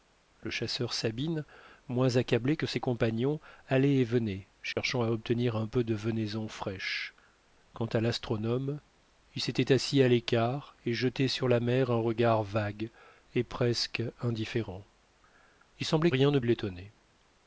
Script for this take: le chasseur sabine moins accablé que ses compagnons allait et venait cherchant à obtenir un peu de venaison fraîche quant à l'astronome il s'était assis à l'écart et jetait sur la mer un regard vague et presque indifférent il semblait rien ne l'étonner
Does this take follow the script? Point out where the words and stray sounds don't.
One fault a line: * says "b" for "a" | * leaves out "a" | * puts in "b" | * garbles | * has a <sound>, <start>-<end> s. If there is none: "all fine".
* has a dropout, 4.7-4.8 s